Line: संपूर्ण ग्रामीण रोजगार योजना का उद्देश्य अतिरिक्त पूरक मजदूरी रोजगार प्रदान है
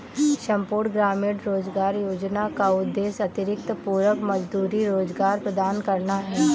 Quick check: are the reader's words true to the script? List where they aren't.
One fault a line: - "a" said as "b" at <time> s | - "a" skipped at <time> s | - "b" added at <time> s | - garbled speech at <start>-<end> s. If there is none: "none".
- "करना" added at 5.9 s